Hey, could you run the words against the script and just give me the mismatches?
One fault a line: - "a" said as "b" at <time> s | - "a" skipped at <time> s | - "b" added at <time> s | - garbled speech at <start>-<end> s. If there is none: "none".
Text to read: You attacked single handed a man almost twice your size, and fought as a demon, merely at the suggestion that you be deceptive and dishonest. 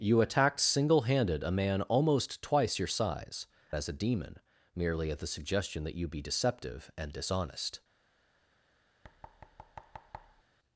- "and fought" skipped at 3.5 s